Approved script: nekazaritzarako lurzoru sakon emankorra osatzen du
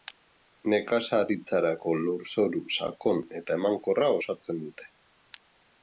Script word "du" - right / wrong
wrong